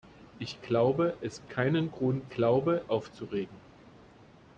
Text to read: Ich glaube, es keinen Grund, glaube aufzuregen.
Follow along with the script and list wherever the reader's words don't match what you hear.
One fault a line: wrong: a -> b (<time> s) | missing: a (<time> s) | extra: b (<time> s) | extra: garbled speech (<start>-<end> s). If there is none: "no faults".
no faults